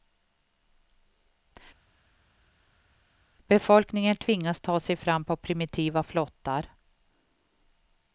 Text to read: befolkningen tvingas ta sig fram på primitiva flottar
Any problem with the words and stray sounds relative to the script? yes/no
no